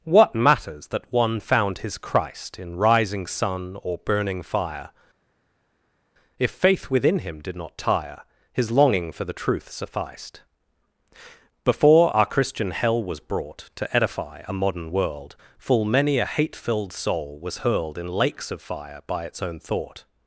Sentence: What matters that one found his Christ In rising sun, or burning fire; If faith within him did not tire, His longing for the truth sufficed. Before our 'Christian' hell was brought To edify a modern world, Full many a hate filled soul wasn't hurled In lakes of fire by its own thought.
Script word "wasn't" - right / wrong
wrong